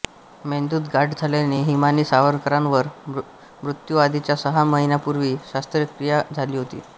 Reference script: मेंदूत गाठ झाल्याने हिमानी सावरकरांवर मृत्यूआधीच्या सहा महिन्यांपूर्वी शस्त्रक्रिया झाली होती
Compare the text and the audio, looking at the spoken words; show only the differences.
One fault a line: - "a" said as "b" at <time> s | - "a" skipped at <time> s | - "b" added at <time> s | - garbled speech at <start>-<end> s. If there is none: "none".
none